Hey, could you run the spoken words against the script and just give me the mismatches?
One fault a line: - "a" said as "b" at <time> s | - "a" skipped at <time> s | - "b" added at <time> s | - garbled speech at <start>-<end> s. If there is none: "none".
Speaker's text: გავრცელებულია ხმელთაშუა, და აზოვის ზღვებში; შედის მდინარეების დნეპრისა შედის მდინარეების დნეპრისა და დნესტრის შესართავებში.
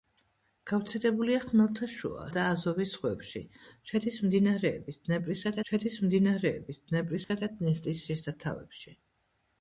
none